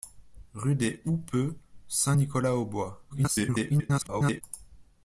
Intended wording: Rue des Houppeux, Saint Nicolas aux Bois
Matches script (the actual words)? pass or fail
fail